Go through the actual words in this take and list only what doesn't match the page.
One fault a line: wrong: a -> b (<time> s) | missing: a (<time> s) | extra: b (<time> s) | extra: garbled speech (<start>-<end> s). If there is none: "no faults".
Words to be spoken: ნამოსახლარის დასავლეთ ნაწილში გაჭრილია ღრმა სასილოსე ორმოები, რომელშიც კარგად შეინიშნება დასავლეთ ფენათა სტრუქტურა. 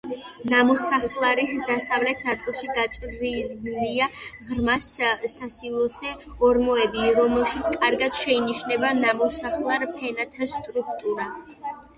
wrong: დასავლეთ -> ნამოსახლარ (9.1 s)